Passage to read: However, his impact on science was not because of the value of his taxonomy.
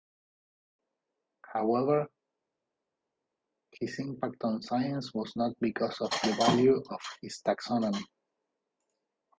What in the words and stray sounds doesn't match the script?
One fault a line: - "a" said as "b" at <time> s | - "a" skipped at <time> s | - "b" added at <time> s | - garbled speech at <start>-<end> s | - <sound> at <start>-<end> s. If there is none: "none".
none